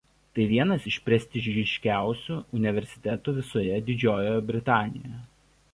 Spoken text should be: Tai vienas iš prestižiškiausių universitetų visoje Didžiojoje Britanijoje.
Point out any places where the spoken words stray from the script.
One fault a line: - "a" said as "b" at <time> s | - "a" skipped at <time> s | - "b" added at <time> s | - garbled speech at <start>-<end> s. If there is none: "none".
none